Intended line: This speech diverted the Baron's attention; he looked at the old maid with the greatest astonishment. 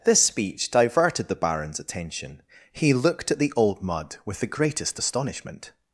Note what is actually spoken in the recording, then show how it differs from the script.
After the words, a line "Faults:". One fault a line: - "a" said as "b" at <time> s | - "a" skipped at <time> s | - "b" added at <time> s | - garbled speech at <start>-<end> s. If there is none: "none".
This speech diverted the Baron's attention; he looked at the old mud with the greatest astonishment.
Faults:
- "maid" said as "mud" at 3.8 s